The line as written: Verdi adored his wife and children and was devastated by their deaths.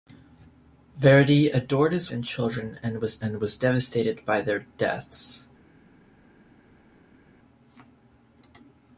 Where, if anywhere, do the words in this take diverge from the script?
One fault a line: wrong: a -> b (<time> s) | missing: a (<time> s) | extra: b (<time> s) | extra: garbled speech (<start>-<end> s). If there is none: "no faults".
wrong: wife -> and children (2.1 s)
wrong: children -> was (3.0 s)